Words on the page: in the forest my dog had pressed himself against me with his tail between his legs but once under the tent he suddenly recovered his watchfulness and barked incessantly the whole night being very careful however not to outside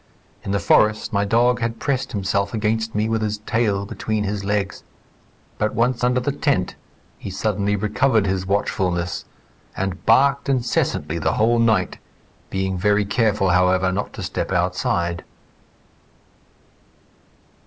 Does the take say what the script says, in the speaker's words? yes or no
no